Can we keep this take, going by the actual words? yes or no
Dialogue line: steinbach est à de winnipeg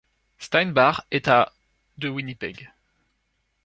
yes